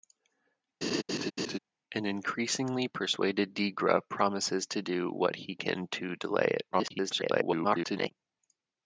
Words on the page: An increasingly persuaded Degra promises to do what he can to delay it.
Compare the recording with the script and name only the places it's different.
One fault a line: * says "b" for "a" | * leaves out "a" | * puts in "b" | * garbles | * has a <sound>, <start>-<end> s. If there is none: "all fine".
* has a laugh, 0.8-1.6 s
* garbles